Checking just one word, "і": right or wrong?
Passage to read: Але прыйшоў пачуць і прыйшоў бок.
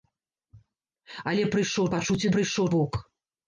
right